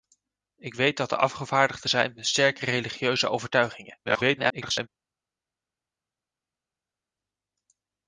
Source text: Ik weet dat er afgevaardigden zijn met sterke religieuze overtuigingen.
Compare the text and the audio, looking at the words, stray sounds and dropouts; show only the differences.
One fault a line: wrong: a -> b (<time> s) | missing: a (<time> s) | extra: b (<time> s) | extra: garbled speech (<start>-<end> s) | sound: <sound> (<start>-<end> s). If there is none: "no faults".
extra: garbled speech (4.0-4.9 s)